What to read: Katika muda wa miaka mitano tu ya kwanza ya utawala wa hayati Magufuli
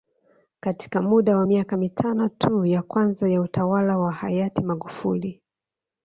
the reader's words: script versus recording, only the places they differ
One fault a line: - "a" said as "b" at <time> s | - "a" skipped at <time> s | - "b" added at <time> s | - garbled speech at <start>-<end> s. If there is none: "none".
none